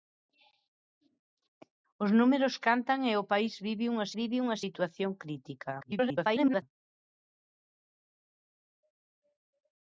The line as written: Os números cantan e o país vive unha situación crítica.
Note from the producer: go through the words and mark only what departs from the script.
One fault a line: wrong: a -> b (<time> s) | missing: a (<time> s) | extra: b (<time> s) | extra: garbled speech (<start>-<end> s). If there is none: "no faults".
extra: vive unha (4.2 s)
extra: garbled speech (5.8-6.6 s)